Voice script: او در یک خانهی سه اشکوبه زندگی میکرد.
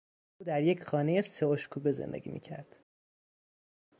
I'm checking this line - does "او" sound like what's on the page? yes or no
yes